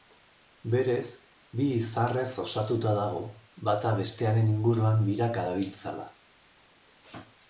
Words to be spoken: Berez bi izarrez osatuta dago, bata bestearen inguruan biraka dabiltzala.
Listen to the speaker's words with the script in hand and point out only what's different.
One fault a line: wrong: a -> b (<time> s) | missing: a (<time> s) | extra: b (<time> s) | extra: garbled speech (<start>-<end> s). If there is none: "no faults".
no faults